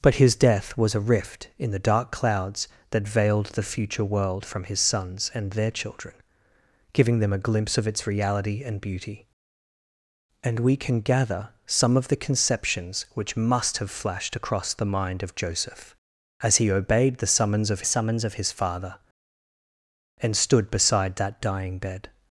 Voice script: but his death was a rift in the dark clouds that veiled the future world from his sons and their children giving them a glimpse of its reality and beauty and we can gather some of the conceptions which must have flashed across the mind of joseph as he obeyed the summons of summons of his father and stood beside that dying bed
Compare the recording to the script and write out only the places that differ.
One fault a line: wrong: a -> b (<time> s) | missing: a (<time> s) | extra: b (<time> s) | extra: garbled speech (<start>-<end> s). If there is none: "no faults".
no faults